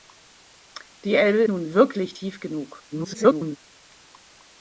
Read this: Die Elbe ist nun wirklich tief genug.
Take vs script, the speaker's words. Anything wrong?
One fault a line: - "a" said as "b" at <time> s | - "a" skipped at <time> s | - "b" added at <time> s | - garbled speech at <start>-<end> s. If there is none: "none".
- "ist" skipped at 1.4 s
- garbled speech at 2.9-3.6 s